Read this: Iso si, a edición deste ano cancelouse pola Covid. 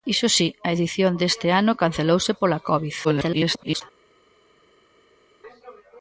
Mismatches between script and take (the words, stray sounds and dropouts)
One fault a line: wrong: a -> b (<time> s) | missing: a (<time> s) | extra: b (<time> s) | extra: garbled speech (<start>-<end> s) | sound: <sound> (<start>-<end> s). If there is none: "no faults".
extra: garbled speech (3.0-3.8 s)